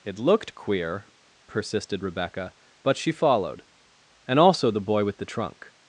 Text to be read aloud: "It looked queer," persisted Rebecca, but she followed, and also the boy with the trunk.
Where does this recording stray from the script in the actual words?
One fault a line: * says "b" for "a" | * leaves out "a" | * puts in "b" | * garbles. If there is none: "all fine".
all fine